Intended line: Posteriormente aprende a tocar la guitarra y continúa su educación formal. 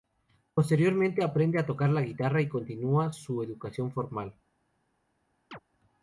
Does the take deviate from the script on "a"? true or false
false